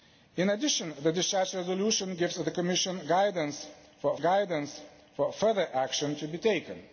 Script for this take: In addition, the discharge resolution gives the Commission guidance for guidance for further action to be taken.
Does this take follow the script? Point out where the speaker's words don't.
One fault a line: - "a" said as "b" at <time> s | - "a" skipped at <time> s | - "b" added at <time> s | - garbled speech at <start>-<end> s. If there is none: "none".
none